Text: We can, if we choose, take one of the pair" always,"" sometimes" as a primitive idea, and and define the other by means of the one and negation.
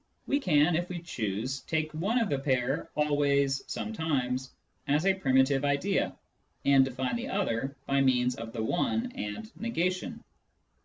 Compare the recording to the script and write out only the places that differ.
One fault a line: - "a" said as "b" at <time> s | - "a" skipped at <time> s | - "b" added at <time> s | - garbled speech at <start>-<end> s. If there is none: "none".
- "and" skipped at 6.8 s